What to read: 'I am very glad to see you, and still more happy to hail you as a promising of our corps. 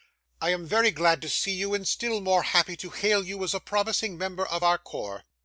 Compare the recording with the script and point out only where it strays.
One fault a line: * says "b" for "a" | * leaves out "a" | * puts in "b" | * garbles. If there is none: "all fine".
* puts in "member"